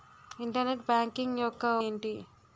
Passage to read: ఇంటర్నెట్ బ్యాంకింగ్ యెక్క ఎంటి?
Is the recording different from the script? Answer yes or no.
no